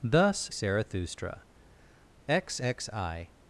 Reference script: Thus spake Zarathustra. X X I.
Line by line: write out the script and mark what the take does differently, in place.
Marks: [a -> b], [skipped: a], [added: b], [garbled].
Thus [skipped: spake] Zarathustra. X X I.